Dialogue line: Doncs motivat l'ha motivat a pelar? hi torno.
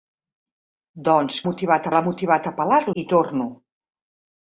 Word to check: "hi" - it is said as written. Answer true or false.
true